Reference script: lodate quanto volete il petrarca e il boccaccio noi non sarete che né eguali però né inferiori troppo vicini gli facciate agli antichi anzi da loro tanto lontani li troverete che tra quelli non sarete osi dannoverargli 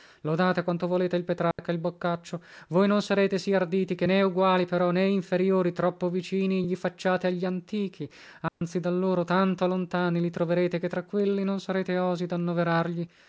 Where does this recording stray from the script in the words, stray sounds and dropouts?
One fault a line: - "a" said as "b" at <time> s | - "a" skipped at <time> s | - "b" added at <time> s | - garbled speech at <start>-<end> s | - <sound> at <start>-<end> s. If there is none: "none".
- dropout at 1.5-1.6 s
- "noi" said as "voi" at 2.7 s
- "sì arditi" added at 3.4 s
- dropout at 8.5-8.6 s